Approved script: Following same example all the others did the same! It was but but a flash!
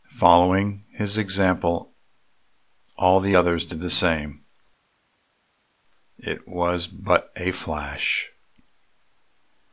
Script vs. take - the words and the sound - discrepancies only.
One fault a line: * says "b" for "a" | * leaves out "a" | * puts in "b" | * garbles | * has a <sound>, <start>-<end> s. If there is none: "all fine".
* says "his" for "same"
* leaves out "but"